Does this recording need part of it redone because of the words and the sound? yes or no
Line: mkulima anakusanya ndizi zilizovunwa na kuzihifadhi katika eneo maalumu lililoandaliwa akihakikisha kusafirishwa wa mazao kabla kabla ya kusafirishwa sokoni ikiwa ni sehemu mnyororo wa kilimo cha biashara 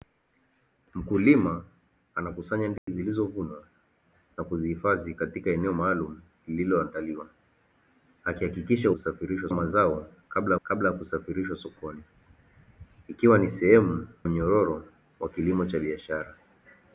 yes